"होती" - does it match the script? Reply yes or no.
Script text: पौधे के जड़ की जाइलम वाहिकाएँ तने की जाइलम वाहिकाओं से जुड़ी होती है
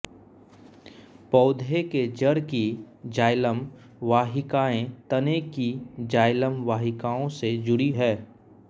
no